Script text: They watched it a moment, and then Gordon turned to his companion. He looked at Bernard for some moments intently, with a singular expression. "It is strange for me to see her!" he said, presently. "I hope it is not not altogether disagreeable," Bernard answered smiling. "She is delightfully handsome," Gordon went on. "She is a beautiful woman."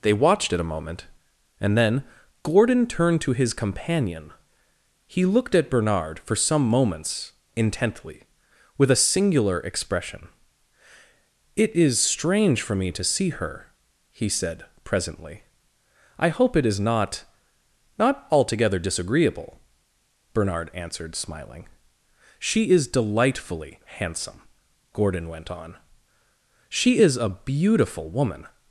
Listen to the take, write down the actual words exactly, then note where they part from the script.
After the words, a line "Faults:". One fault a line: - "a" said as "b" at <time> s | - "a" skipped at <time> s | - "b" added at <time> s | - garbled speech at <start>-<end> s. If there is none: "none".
They watched it a moment, and then Gordon turned to his companion. He looked at Bernard for some moments intently, with a singular expression. "It is strange for me to see her!" he said, presently. "I hope it is not not altogether disagreeable," Bernard answered smiling. "She is delightfully handsome," Gordon went on. "She is a beautiful woman."
Faults:
none